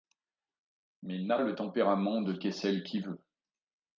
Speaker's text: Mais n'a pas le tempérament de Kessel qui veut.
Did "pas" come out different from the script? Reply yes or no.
yes